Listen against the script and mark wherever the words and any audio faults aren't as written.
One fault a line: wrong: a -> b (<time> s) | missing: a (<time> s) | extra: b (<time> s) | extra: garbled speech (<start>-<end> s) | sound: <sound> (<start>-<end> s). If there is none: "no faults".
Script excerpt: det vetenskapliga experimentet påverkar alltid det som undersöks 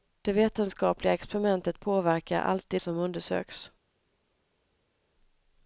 missing: det (2.8 s)